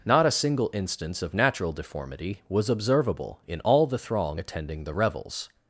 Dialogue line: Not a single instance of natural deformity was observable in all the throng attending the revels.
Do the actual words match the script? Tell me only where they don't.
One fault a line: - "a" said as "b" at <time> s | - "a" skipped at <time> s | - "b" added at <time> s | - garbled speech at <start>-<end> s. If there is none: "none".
none